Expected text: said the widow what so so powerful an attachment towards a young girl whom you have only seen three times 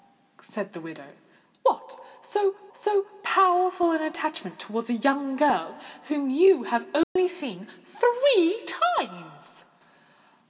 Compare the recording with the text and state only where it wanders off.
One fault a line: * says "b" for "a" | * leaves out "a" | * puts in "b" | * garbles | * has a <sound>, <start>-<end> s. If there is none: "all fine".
* has a dropout, 7.0-7.2 s